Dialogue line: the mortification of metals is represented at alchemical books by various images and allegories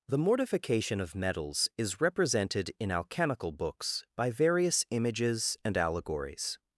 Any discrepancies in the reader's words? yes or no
yes